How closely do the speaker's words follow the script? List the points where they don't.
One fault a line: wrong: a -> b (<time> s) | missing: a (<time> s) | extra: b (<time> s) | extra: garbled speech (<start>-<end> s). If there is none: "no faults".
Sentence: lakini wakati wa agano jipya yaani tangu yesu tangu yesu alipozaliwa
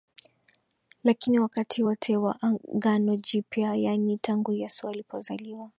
extra: wote (1.8 s)
missing: tangu yesu (4.9 s)